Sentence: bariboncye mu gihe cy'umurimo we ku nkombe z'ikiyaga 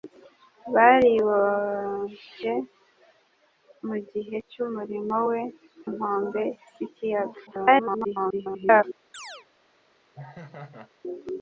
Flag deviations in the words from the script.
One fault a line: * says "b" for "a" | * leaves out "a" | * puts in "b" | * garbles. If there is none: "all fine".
* leaves out "ku"
* garbles